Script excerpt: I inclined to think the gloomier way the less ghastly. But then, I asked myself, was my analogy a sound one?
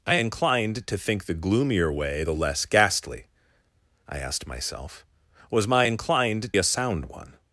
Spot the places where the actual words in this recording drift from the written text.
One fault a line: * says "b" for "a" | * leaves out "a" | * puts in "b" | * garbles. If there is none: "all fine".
* leaves out "But then"
* says "inclined" for "analogy"